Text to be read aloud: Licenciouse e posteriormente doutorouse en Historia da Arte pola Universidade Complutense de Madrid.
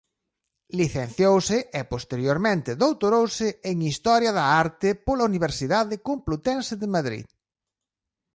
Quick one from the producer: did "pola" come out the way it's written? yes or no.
yes